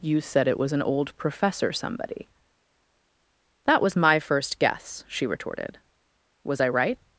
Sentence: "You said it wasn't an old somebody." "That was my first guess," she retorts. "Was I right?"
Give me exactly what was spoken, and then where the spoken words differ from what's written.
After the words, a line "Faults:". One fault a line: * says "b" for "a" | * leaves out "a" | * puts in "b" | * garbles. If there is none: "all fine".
"You said it was an old professor somebody." "That was my first guess," she retorted. "Was I right?"
Faults:
* says "was" for "wasn't"
* puts in "professor"
* says "retorted" for "retorts"